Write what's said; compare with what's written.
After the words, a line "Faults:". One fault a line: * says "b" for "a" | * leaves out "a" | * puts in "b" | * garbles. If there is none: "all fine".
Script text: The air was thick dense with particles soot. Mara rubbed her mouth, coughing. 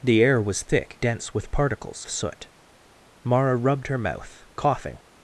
The air was thick dense with particles soot. Mara rubbed her mouth, coughing.
Faults:
all fine